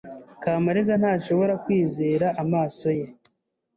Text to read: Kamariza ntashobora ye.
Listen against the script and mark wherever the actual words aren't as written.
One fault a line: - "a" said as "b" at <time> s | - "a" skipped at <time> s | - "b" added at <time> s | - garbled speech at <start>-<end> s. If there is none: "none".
- "kwizera amaso" added at 1.6 s